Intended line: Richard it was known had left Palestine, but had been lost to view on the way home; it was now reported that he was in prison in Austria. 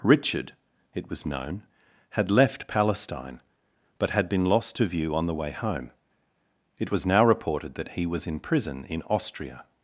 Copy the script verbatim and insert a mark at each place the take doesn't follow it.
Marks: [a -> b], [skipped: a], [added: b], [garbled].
Richard it was known had left Palestine, but had been lost to view on the way home; it was now reported that he was in prison in Austria.